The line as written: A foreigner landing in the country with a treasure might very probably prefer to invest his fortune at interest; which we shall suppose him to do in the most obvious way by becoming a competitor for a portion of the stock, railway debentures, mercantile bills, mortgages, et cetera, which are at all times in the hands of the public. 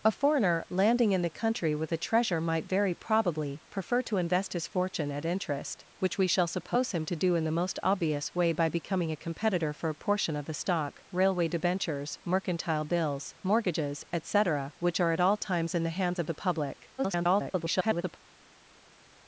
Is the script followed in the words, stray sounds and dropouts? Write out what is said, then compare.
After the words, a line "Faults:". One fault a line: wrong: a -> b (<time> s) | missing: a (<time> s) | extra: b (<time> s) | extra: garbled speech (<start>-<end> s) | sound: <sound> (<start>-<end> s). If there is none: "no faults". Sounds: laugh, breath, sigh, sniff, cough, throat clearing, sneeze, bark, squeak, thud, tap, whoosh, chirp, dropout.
A foreigner landing in the country with a treasure might very probably prefer to invest his fortune at interest; which we shall suppose him to do in the most obvious way by becoming a competitor for a portion of the stock, railway debentures, mercantile bills, mortgages, et cetera, which are at all times in the hands of the public. [garbled]
Faults:
extra: garbled speech (17.0-18.2 s)